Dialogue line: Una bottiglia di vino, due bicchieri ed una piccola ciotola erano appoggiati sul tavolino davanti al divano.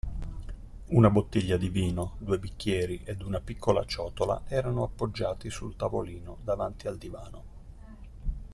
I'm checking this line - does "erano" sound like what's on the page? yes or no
yes